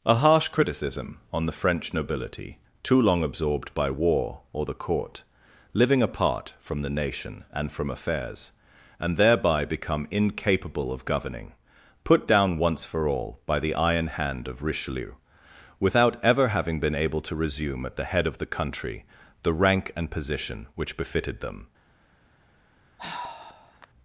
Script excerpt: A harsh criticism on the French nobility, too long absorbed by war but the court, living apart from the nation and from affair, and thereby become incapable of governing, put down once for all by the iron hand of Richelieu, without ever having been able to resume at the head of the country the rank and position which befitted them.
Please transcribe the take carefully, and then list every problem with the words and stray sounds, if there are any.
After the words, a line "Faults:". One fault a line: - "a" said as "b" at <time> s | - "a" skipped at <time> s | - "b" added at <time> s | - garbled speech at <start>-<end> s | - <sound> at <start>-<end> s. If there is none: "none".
A harsh criticism on the French nobility, too long absorbed by war or the court, living apart from the nation and from affairs, and thereby become incapable of governing, put down once for all by the iron hand of Richelieu, without ever having been able to resume at the head of the country the rank and position which befitted them.
Faults:
- "but" said as "or" at 4.5 s
- "affair" said as "affairs" at 7.9 s
- sigh at 23.0-23.9 s